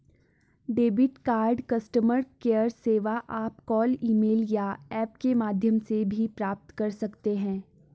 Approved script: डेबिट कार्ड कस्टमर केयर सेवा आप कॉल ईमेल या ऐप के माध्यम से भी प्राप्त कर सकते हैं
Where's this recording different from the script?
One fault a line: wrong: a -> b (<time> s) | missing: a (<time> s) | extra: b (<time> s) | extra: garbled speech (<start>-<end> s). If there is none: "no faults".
no faults